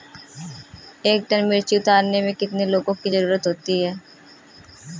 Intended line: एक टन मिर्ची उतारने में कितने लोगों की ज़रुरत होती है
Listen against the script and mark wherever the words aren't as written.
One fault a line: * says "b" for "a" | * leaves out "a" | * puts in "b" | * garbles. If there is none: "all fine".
all fine